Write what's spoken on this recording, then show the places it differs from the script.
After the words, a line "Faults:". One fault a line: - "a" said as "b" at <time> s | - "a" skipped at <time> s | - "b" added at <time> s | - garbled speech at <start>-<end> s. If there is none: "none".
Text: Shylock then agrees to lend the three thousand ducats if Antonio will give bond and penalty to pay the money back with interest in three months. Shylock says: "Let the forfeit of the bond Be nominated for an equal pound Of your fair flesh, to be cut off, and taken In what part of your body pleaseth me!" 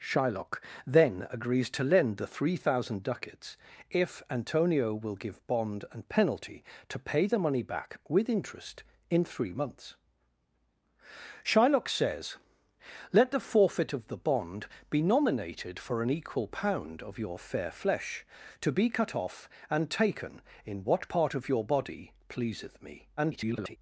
Shylock then agrees to lend the three thousand ducats if Antonio will give bond and penalty to pay the money back with interest in three months. Shylock says: "Let the forfeit of the bond Be nominated for an equal pound Of your fair flesh, to be cut off, and taken In what part of your body pleaseth me!" [garbled]
Faults:
- garbled speech at 23.2-23.8 s